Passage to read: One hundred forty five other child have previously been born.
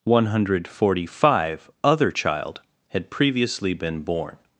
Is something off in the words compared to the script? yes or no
yes